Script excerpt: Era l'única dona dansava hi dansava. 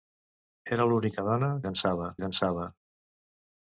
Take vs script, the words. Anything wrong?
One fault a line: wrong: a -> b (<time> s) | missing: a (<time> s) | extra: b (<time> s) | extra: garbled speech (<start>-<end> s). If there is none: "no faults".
no faults